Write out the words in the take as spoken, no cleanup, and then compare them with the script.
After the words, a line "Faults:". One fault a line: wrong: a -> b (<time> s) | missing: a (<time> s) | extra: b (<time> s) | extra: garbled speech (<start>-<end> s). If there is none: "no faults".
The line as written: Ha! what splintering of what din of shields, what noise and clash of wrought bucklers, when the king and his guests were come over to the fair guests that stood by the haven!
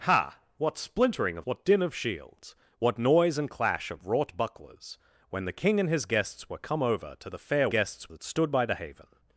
Ha! what splintering of what din of shields, what noise and clash of wrought bucklers, when the king and his guests were come over to the fair guests that stood by the haven!
Faults:
no faults